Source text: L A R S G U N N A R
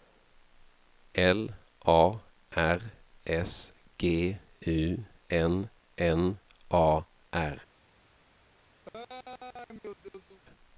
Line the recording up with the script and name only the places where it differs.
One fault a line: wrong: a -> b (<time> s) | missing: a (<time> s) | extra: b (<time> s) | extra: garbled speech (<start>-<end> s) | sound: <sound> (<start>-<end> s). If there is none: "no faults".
sound: laugh (8.9-10.4 s)